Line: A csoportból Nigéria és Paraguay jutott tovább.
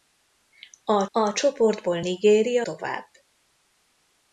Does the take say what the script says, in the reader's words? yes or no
no